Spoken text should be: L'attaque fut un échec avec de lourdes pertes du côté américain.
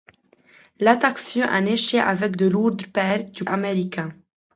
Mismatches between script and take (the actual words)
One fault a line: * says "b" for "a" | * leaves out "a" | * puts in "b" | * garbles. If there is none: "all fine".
* leaves out "côté"